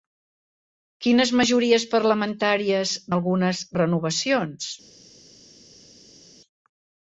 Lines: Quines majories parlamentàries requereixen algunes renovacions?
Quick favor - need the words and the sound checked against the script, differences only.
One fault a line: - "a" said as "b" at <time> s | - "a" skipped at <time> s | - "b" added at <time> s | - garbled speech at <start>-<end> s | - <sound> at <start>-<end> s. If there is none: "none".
- "requereixen" skipped at 3.0 s